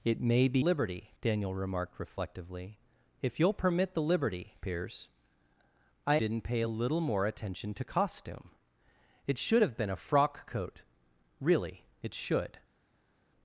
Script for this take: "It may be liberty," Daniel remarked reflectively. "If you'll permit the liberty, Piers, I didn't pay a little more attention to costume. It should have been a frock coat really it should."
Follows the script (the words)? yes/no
yes